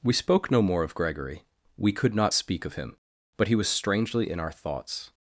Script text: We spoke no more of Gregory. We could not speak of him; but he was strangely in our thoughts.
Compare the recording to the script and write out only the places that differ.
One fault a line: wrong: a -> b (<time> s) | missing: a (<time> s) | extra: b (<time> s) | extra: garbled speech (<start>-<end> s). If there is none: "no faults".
no faults